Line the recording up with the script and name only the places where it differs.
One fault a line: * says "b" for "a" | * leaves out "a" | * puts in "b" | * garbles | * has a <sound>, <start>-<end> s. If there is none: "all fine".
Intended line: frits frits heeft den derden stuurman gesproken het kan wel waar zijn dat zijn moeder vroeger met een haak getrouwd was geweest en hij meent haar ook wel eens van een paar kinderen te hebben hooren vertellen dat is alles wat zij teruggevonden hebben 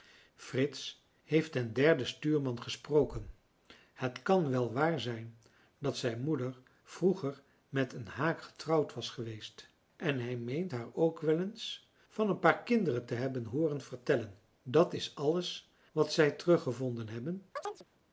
* leaves out "frits"
* has a chirp, 17.6-17.9 s